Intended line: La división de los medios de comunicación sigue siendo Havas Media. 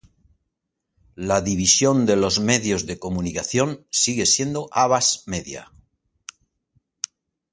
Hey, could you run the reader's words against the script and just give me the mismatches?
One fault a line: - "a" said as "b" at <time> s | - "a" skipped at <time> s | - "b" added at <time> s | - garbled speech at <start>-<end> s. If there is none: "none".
none